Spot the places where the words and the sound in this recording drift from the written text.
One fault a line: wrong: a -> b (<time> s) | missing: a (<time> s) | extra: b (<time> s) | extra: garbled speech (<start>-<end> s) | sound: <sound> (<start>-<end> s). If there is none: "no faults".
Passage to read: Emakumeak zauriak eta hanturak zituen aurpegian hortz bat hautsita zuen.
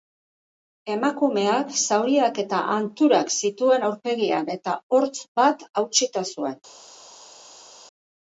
extra: eta (4.6 s)